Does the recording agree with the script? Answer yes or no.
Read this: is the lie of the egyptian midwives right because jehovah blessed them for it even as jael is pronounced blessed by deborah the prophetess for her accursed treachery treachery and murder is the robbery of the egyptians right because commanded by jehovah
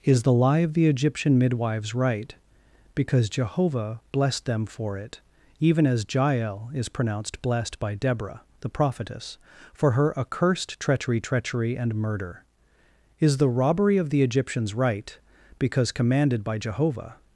yes